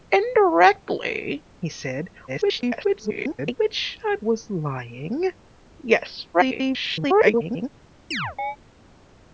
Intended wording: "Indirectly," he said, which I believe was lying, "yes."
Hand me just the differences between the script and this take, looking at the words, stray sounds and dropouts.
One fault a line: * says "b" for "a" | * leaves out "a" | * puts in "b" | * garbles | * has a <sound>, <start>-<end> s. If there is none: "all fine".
* garbles
* leaves out "believe"
* garbles
* has a chirp, 8.1-8.6 s